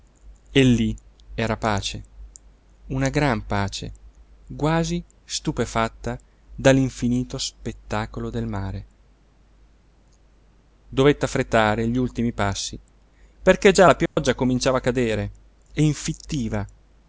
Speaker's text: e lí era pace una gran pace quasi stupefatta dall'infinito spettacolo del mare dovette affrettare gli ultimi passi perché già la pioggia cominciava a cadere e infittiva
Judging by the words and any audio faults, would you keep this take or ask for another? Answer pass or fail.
fail